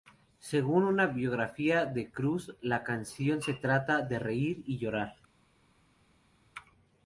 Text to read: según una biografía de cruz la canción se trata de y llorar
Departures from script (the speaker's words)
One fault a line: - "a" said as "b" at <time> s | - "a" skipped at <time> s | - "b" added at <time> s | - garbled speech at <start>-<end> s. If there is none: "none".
- "reír" added at 4.2 s